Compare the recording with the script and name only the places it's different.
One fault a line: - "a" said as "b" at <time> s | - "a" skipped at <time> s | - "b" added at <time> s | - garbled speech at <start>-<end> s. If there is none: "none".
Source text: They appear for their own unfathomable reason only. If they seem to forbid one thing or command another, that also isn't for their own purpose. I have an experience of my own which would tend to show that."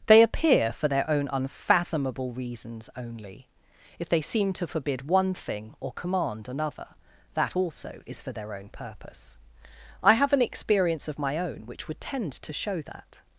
- "reason" said as "reasons" at 2.3 s
- "isn't" said as "is" at 8.1 s